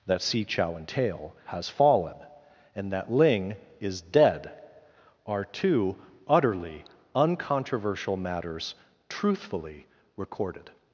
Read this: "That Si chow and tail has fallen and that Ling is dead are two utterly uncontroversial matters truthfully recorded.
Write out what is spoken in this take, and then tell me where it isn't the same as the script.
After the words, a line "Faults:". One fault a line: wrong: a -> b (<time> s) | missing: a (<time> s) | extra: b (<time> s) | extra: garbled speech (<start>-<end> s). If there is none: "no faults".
"That Si chow and tail has fallen and that Ling is dead are two utterly uncontroversial matters truthfully recorded.
Faults:
no faults